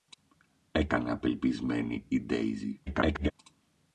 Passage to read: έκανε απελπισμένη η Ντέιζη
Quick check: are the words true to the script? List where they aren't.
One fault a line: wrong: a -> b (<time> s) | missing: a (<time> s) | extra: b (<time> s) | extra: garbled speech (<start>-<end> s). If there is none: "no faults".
extra: garbled speech (2.9-3.3 s)